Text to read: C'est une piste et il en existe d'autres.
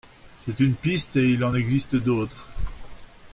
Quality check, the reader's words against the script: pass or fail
pass